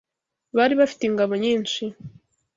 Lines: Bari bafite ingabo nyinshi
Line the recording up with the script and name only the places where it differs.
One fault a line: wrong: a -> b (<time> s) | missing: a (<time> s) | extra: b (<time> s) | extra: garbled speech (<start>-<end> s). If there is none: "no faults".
no faults